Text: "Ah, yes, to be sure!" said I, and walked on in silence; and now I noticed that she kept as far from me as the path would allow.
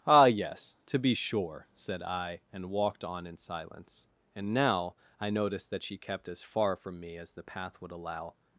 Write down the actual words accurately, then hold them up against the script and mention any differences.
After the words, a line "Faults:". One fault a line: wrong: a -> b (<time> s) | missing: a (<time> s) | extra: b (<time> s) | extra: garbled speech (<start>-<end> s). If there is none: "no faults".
"Ah, yes, to be sure!" said I, and walked on in silence; and now I noticed that she kept as far from me as the path would allow.
Faults:
no faults